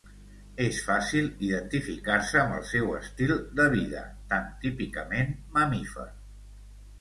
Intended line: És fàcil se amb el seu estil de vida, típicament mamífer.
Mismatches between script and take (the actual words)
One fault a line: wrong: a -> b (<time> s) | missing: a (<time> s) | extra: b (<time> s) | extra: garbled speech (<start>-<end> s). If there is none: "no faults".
extra: identificar (1.5 s)
extra: tan (4.3 s)